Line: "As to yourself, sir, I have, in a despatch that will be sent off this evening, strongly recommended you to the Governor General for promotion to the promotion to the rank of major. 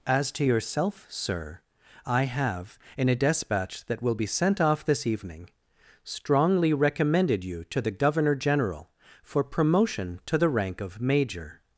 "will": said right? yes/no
yes